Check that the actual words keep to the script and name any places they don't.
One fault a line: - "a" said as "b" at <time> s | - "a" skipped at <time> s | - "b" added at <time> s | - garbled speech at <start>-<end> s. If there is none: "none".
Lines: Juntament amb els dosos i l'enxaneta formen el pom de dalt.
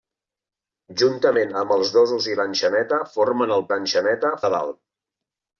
- "pom" said as "l'enxaneta" at 3.7 s